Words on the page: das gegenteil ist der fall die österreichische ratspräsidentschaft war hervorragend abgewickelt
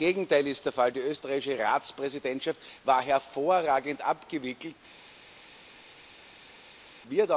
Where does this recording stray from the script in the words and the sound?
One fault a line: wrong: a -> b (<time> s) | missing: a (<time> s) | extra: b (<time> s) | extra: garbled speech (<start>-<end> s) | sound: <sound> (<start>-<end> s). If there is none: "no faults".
no faults